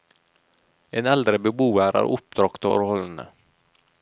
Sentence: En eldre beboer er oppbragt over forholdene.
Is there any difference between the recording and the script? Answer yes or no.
yes